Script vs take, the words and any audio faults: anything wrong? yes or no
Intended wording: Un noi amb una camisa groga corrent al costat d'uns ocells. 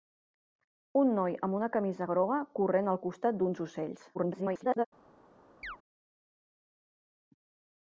yes